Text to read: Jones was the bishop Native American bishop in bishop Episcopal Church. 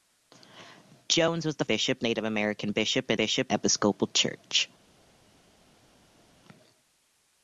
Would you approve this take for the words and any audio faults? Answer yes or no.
yes